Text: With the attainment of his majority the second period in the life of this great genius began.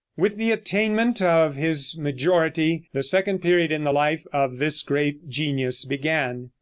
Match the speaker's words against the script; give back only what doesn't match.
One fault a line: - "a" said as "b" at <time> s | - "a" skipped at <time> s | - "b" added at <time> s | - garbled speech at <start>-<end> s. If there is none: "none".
none